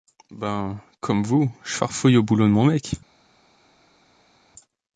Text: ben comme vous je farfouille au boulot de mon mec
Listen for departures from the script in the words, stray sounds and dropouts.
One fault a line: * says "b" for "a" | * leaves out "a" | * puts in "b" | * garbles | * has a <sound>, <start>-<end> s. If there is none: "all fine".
all fine